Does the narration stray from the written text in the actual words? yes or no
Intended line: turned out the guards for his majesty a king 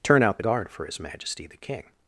yes